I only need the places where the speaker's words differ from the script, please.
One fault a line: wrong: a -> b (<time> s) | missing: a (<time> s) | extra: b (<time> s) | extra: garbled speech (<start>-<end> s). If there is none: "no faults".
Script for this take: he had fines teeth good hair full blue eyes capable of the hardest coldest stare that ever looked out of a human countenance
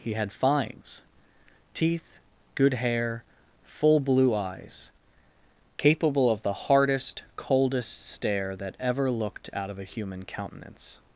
no faults